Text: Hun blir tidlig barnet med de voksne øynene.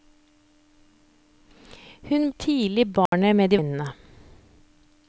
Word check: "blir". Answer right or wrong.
wrong